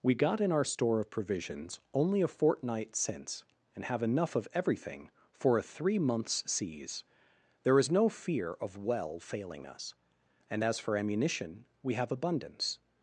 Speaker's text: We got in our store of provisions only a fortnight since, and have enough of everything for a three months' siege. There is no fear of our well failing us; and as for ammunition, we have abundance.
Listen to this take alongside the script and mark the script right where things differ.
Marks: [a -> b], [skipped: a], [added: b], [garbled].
We got in our store of provisions only a fortnight since, and have enough of everything for a three months' siege. There is no fear of [skipped: our] well failing us; and as for ammunition, we have abundance.